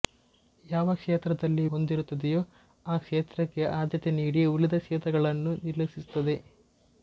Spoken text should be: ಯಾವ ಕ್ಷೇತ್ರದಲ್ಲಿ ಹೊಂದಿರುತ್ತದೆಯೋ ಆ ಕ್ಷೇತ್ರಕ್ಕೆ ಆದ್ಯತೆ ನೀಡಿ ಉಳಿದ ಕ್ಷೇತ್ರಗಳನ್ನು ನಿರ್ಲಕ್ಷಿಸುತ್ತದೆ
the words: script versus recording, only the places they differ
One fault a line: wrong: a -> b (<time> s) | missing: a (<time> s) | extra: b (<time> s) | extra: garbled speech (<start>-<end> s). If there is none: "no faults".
no faults